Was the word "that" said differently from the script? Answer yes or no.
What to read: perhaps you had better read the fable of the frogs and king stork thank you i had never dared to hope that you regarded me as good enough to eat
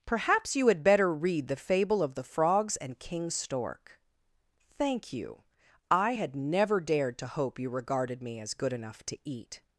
yes